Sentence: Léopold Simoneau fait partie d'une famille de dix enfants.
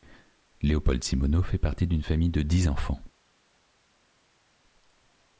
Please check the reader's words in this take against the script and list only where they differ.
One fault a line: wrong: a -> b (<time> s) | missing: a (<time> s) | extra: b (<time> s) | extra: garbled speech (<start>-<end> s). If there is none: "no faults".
no faults